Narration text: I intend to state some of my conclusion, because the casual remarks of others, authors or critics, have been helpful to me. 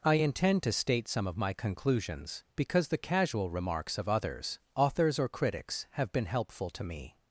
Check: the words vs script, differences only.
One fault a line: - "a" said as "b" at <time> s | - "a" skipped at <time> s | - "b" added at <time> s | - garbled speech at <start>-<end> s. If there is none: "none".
- "conclusion" said as "conclusions" at 1.5 s